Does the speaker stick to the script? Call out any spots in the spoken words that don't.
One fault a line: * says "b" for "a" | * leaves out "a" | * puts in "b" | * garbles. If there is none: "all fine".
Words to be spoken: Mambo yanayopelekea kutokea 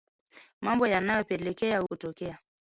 all fine